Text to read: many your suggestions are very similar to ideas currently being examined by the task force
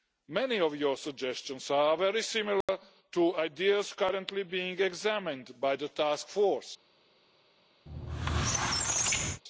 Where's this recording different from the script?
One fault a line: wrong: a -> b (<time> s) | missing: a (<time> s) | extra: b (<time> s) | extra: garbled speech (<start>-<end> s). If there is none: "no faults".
extra: of (0.6 s)